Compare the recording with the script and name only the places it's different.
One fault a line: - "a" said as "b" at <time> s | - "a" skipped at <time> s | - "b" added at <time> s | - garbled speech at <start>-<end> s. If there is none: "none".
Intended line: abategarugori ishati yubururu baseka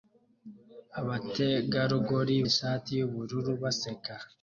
none